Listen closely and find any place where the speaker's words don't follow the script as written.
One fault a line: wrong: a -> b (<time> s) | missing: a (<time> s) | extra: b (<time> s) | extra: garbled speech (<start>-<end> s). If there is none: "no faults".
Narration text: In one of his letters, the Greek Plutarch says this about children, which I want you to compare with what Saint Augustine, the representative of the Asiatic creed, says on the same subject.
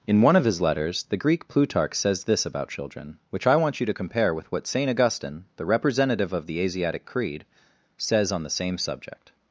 no faults